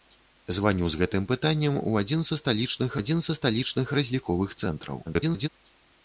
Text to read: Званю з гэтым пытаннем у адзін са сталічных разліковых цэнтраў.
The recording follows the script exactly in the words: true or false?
false